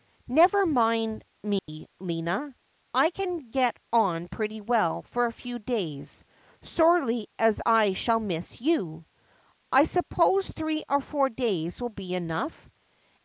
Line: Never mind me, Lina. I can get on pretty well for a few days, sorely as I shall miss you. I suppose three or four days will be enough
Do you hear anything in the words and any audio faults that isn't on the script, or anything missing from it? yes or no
yes